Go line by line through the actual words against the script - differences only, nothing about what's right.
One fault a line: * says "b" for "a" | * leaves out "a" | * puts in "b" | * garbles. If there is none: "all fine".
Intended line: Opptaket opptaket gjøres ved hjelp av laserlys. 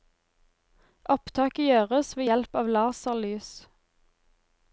* leaves out "opptaket"